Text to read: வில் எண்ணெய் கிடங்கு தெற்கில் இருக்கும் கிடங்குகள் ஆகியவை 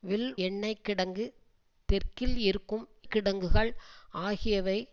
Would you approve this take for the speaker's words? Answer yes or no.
yes